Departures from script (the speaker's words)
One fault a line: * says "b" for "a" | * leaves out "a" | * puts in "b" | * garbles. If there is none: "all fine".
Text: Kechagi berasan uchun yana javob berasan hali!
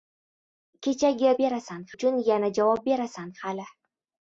all fine